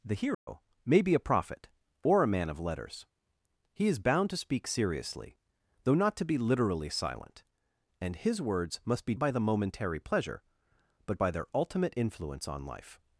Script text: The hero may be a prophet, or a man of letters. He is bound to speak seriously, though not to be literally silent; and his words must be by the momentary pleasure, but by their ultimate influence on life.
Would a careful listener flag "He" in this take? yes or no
no